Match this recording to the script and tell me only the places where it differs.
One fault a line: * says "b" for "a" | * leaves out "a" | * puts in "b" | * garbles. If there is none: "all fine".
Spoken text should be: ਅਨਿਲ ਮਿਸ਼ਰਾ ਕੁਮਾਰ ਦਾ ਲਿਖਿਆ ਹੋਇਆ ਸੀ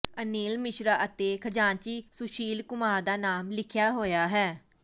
* puts in "ਅਤੇ ਖਜ਼ਾਨਚੀ ਸੁਸ਼ੀਲ"
* puts in "ਨਾਮ"
* says "ਹੈ" for "ਸੀ"